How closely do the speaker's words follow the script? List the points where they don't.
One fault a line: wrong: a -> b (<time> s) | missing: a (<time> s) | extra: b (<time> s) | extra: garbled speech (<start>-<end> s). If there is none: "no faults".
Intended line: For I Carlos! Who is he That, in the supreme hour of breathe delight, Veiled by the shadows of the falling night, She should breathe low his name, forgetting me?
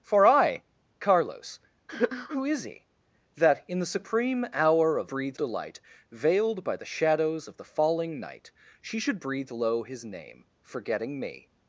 no faults